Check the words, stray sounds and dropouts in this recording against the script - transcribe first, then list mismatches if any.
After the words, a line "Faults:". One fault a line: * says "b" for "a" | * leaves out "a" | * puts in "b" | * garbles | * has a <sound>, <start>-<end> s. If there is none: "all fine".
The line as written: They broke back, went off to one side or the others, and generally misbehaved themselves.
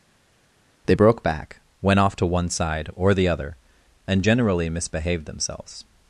They broke back, went off to one side or the other, and generally misbehaved themselves.
Faults:
* says "other" for "others"